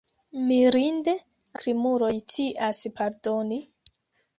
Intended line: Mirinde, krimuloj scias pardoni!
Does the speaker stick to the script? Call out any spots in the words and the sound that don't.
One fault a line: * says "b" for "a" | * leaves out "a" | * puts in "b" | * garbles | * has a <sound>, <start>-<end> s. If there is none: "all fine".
all fine